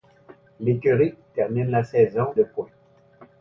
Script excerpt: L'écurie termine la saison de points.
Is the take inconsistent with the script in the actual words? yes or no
no